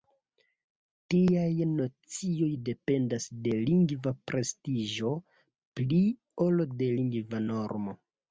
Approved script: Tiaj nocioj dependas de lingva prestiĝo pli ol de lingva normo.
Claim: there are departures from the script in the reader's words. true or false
false